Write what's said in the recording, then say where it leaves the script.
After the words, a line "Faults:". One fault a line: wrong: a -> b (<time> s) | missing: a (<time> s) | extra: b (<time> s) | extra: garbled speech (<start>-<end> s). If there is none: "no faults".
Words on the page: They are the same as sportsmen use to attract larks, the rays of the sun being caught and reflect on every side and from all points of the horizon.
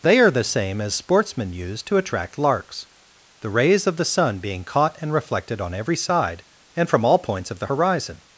They are the same as sportsmen use to attract larks, the rays of the sun being caught and reflected on every side and from all points of the horizon.
Faults:
wrong: reflect -> reflected (5.1 s)